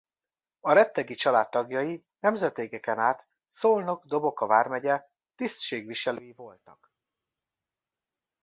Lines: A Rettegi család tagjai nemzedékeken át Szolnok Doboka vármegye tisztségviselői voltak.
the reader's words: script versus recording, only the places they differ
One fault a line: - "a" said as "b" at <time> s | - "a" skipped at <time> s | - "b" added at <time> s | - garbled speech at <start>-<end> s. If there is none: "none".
none